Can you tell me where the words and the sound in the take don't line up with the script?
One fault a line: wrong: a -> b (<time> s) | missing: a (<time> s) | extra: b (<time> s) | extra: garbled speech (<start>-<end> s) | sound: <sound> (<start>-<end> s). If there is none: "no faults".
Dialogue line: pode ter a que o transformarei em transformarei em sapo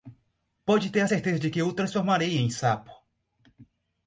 extra: certeza de (1.0 s)
missing: transformarei em (2.5 s)